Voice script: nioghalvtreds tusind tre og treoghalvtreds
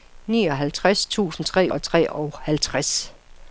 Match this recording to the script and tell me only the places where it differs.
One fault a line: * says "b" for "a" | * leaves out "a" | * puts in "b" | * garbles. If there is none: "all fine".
all fine